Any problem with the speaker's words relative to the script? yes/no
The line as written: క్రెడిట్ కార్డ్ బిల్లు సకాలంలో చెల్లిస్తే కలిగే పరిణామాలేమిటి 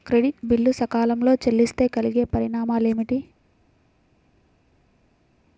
yes